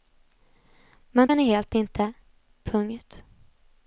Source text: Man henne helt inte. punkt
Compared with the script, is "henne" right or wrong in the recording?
right